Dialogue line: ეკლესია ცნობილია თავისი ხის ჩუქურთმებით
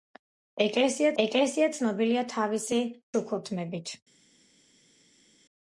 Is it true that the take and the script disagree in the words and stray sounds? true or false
true